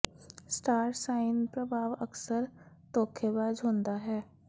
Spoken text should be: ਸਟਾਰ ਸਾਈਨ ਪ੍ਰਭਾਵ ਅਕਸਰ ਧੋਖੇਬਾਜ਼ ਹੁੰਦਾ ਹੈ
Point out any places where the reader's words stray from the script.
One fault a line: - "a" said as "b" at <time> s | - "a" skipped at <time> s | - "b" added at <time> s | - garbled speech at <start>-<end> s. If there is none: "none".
none